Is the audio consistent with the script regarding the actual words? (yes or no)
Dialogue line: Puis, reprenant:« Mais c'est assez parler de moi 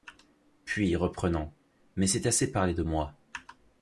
yes